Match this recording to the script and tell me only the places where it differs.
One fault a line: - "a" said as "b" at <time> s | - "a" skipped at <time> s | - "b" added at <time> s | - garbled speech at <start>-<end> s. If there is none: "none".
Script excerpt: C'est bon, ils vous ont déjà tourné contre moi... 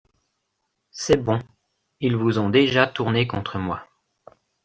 none